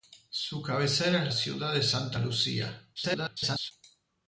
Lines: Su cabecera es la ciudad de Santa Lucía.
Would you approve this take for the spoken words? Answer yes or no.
no